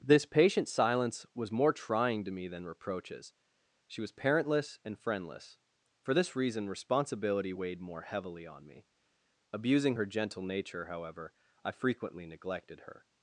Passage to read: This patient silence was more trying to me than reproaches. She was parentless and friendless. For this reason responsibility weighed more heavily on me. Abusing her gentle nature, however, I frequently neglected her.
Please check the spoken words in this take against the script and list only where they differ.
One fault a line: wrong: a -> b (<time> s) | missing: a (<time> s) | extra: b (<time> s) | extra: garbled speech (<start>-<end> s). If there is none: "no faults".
no faults